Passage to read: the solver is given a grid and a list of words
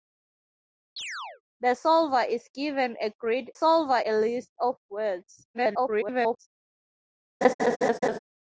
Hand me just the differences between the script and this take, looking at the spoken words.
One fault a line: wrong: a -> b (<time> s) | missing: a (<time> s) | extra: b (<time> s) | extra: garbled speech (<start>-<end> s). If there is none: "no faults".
wrong: and -> solver (3.5 s)
extra: garbled speech (5.5-6.5 s)